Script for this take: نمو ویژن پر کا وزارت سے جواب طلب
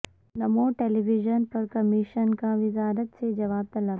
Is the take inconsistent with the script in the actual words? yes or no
yes